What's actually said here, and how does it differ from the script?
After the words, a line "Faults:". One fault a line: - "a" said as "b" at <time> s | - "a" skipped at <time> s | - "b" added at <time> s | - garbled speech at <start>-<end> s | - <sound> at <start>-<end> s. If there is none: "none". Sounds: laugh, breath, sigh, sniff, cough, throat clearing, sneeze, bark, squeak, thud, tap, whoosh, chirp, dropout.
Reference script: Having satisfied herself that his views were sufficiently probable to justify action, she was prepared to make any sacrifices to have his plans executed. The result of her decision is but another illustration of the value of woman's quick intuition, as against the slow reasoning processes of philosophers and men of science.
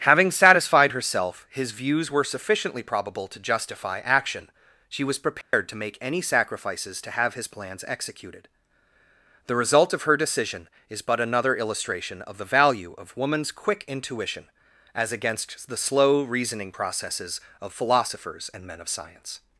Having satisfied herself his views were sufficiently probable to justify action, she was prepared to make any sacrifices to have his plans executed. The result of her decision is but another illustration of the value of woman's quick intuition, as against the slow reasoning processes of philosophers and men of science.
Faults:
- "that" skipped at 1.5 s
- dropout at 5.4-5.5 s